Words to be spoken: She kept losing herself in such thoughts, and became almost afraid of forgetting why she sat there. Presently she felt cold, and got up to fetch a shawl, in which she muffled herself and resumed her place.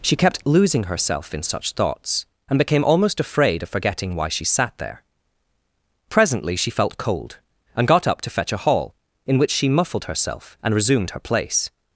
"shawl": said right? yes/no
no